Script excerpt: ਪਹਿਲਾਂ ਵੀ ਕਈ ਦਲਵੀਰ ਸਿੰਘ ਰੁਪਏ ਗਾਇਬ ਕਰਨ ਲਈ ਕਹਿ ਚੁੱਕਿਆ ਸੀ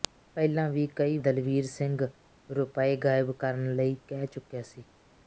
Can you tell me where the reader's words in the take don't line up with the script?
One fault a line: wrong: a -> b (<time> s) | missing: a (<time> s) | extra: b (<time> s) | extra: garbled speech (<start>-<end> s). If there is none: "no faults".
no faults